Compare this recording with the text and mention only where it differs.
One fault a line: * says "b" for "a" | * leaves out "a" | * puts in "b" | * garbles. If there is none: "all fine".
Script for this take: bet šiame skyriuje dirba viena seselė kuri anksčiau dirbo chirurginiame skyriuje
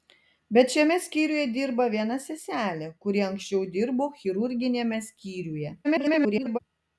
* garbles